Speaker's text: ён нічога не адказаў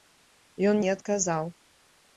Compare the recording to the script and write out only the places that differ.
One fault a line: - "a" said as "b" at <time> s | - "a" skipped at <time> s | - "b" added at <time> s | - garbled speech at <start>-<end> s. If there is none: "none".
- "нічога" skipped at 0.8 s